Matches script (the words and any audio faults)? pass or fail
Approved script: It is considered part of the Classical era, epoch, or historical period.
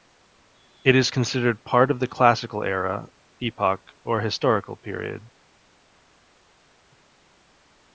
pass